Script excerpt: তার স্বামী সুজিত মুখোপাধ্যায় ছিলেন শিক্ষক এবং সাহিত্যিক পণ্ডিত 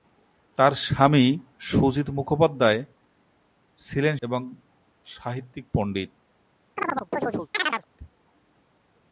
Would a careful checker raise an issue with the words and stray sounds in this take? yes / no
yes